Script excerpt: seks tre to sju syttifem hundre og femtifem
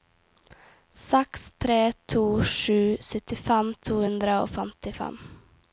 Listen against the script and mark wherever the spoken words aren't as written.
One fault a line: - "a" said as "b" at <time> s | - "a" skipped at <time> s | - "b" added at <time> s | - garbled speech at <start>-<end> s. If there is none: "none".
- "to" added at 3.9 s